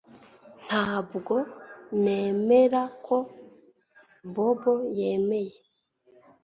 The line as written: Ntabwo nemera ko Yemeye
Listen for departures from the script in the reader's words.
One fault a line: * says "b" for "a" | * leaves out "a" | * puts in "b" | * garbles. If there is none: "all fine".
* puts in "Bobo"